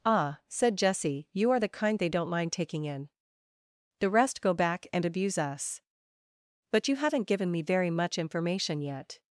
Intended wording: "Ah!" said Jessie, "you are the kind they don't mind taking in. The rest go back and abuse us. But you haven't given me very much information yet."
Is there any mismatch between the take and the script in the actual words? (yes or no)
no